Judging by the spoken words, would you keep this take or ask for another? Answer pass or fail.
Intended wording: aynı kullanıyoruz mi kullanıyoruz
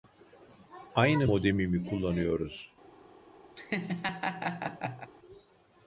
fail